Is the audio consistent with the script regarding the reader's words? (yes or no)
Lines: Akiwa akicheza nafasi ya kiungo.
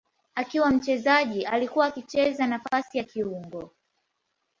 no